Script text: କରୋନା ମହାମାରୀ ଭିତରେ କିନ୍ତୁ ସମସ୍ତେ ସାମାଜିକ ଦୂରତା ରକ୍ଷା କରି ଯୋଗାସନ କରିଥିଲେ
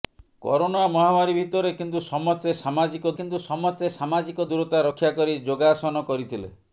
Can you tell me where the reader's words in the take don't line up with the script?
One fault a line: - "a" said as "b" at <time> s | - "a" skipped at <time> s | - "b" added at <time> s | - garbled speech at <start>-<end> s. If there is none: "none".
- "କିନ୍ତୁ ସମସ୍ତେ ସାମାଜିକ" added at 3.1 s